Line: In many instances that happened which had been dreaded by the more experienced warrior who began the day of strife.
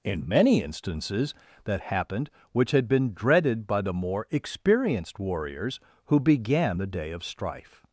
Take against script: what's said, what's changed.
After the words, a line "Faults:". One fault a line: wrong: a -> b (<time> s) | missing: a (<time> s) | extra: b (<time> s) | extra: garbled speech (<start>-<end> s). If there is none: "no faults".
In many instances that happened which had been dreaded by the more experienced warriors who began the day of strife.
Faults:
wrong: warrior -> warriors (5.2 s)